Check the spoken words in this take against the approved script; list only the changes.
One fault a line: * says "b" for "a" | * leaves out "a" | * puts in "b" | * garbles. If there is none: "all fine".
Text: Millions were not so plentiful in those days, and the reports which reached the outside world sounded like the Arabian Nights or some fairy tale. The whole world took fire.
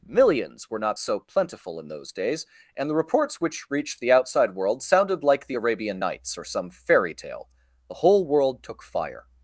all fine